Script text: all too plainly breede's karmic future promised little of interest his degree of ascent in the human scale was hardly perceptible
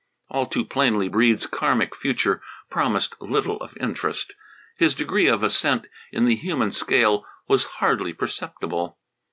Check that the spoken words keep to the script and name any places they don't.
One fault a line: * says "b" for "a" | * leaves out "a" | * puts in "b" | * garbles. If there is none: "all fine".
all fine